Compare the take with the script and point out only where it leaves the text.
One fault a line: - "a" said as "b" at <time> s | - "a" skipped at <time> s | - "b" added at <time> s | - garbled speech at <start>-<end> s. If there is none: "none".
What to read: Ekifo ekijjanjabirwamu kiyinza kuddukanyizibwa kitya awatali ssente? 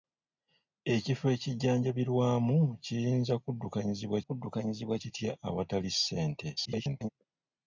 - "kuddukanyizibwa" added at 4.3 s
- garbled speech at 6.6-7.1 s